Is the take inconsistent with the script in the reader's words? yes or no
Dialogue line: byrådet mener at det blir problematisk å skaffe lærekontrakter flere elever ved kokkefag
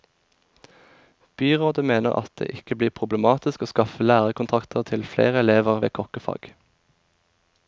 yes